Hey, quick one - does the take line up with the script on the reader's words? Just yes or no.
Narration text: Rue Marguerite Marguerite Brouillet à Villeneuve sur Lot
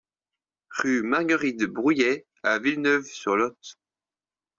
no